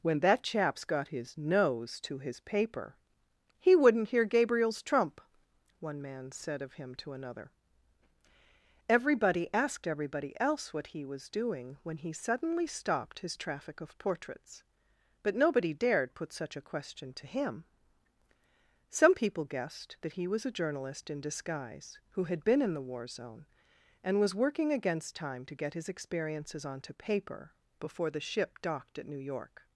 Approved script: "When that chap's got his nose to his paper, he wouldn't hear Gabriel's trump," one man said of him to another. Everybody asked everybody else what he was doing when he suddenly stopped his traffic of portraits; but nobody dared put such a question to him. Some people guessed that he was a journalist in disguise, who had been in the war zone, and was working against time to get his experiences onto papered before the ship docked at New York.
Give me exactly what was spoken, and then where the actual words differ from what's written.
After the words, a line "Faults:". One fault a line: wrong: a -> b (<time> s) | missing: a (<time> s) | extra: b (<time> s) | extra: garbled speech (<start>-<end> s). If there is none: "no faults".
"When that chap's got his nose to his paper, he wouldn't hear Gabriel's trump," one man said of him to another. Everybody asked everybody else what he was doing when he suddenly stopped his traffic of portraits; but nobody dared put such a question to him. Some people guessed that he was a journalist in disguise, who had been in the war zone, and was working against time to get his experiences onto paper before the ship docked at New York.
Faults:
wrong: papered -> paper (26.9 s)